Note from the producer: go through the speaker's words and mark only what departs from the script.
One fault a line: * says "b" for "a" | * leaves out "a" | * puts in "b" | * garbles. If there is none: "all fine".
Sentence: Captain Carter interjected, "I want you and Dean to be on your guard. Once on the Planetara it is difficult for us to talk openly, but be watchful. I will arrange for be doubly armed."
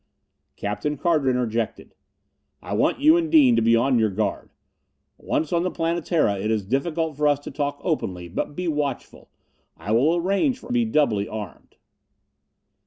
all fine